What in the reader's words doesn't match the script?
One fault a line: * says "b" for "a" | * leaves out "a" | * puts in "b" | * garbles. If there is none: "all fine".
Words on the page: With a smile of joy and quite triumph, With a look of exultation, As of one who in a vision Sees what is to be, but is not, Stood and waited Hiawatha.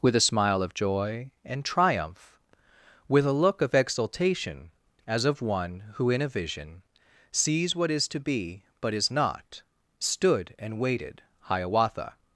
* leaves out "quite"